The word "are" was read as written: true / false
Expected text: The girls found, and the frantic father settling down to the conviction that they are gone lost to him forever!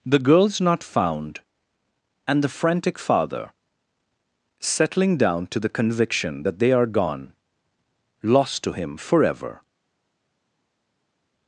true